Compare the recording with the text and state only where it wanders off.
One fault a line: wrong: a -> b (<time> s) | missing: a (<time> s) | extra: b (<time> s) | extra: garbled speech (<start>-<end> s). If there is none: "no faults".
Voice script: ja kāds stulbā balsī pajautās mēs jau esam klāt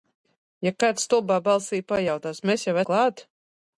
missing: esam (2.8 s)